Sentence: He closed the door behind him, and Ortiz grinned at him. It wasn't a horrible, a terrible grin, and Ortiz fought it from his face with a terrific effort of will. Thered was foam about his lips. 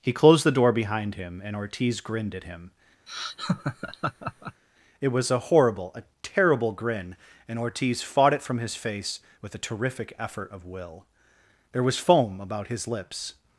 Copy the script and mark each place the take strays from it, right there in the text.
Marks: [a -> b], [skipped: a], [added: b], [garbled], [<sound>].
He closed the door behind him, and Ortiz grinned at him. [laugh] It [wasn't -> was] a horrible, a terrible grin, and Ortiz fought it from his face with a terrific effort of will. [Thered -> There] was foam about his lips.